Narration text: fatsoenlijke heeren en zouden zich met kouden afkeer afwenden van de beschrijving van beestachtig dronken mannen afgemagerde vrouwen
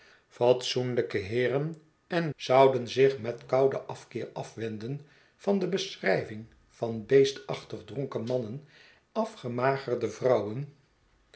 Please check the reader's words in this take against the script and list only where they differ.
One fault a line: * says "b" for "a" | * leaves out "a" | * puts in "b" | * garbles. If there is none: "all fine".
all fine